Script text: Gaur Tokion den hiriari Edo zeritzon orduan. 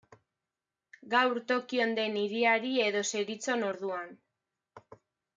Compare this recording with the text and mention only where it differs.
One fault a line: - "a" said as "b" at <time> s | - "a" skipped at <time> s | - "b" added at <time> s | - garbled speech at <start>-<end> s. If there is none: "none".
none